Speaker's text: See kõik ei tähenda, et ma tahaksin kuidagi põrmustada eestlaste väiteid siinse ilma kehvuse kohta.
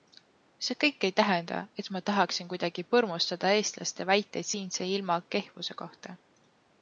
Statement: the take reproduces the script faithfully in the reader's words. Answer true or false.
true